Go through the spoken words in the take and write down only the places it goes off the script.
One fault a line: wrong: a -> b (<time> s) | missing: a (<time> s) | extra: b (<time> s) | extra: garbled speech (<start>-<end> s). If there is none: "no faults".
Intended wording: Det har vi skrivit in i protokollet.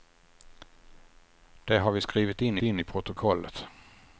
extra: in (2.6 s)